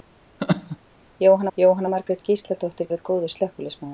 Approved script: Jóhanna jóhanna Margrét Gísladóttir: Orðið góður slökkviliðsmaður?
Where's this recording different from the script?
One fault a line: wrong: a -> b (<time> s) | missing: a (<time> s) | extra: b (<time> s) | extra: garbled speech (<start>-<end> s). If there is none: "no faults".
no faults